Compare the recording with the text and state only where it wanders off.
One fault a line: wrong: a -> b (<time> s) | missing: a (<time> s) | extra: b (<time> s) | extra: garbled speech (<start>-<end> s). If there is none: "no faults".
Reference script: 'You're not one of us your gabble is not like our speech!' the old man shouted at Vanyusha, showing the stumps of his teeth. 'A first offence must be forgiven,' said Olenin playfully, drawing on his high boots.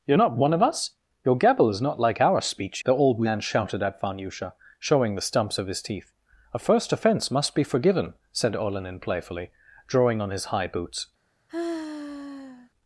no faults